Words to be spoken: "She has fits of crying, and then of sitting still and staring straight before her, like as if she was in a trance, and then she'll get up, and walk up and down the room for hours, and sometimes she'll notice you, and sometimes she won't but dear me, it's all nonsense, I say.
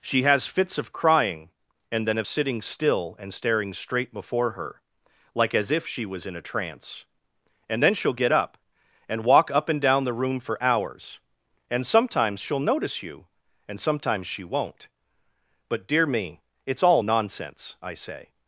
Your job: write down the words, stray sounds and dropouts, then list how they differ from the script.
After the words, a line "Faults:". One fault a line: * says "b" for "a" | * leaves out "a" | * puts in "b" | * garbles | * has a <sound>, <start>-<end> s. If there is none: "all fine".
"She has fits of crying, and then of sitting still and staring straight before her, like as if she was in a trance, and then she'll get up, and walk up and down the room for hours, and sometimes she'll notice you, and sometimes she won't but dear me, it's all nonsense, I say.
Faults:
all fine